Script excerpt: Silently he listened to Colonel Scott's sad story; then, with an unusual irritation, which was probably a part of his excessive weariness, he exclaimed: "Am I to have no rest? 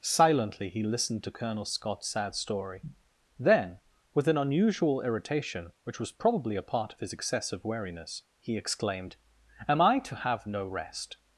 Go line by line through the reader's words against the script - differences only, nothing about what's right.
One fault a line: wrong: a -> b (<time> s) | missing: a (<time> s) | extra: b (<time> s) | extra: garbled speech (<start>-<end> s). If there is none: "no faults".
no faults